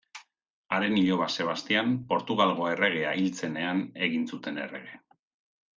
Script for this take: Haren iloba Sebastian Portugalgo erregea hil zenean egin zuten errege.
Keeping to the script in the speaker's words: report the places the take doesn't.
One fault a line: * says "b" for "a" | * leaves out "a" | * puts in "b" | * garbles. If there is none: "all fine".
all fine